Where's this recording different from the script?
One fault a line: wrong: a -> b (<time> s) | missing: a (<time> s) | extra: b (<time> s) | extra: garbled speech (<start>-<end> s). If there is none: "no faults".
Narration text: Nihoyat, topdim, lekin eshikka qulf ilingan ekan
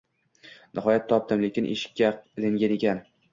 missing: qulf (2.1 s)